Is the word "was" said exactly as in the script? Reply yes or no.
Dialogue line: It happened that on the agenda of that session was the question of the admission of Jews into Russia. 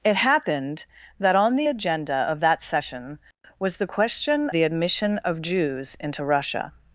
yes